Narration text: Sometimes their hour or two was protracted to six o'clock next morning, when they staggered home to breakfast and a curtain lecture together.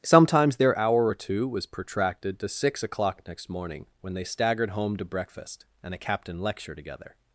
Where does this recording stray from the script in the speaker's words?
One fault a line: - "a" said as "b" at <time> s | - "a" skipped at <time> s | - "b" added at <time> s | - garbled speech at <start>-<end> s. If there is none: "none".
- "curtain" said as "captain" at 6.0 s